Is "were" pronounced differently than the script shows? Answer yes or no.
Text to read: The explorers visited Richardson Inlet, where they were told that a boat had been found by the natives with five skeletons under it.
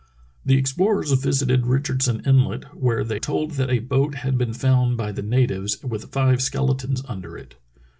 yes